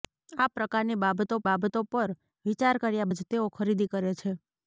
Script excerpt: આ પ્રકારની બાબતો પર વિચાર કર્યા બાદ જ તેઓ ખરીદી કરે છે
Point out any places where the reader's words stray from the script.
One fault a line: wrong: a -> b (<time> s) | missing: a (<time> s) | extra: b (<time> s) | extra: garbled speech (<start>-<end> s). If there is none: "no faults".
extra: બાબતો (1.5 s)
missing: બાદ (3.1 s)